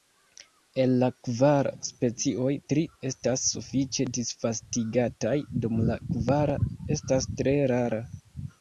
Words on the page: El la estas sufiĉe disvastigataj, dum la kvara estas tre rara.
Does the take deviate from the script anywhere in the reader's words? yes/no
yes